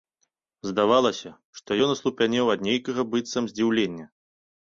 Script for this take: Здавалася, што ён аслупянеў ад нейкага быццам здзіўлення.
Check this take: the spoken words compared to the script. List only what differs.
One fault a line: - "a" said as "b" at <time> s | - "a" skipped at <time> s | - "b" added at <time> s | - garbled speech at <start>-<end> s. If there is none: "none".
none